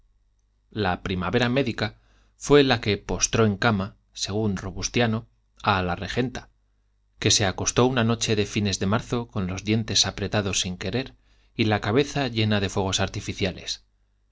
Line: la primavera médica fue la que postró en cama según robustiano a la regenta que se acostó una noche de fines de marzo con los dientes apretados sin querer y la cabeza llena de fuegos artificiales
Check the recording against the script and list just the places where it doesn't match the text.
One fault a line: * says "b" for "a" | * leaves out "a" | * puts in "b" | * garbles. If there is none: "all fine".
all fine